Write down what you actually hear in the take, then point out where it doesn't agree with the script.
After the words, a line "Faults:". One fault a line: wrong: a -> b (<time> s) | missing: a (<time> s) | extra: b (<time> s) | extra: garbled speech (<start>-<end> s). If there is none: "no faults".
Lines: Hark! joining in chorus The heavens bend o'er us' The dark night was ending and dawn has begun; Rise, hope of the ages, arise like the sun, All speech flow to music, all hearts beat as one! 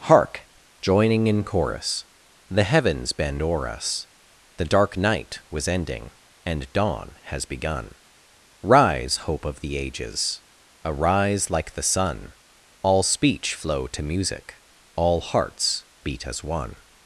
Hark! joining in chorus The heavens bend o'er us' The dark night was ending and dawn has begun; Rise, hope of the ages, arise like the sun, All speech flow to music, all hearts beat as one!
Faults:
no faults